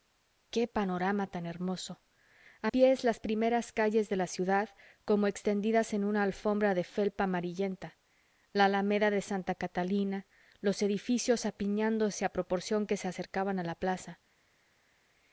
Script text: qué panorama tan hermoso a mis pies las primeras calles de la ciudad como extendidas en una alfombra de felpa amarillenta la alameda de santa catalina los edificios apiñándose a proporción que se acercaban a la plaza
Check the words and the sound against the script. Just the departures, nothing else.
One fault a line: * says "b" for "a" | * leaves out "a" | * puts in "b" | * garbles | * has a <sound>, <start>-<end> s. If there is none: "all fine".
* leaves out "mis"